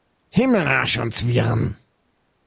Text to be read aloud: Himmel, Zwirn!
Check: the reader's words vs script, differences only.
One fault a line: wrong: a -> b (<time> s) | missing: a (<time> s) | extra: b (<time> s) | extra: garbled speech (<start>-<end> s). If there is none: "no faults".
extra: Arsch und (0.7 s)